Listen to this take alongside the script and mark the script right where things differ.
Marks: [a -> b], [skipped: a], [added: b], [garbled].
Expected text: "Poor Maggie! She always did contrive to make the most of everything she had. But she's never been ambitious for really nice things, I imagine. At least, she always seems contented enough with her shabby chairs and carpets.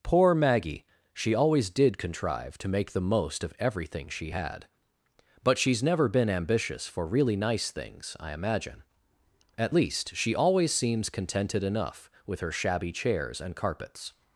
"Poor Maggie! She always did contrive to make the most of everything she had. But she's never been ambitious for really nice things, I imagine. At least, she always seems contented enough with her shabby chairs and carpets.